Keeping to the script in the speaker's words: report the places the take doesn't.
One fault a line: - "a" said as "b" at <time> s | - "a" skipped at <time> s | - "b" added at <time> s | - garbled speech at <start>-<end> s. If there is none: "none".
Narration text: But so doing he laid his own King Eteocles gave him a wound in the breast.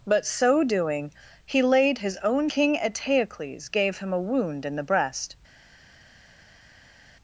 none